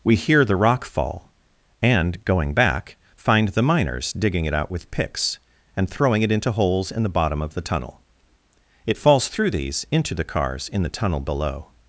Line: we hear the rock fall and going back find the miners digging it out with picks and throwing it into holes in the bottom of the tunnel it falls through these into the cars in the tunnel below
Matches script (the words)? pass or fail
pass